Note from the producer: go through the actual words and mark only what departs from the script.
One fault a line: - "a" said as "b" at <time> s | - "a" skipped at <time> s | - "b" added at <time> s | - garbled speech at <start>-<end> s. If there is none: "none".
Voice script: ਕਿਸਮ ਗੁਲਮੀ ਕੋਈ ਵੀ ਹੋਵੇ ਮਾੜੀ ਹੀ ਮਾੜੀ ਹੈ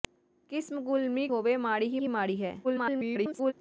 - "ਕੋਈ ਵੀ" skipped at 1.3 s
- "ਹੀ" added at 2.0 s
- garbled speech at 2.6-3.5 s